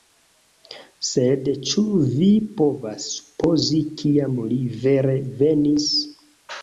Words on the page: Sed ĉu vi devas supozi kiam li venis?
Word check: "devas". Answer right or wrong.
wrong